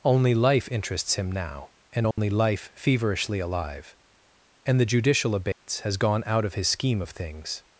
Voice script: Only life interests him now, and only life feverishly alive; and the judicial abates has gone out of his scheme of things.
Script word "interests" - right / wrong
right